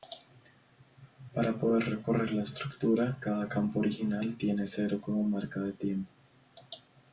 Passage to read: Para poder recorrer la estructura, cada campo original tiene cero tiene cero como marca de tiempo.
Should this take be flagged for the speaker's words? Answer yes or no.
yes